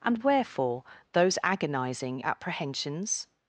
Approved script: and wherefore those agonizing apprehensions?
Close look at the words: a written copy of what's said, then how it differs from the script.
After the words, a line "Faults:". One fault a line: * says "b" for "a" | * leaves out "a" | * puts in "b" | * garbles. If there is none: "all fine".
and wherefore those agonizing apprehensions?
Faults:
all fine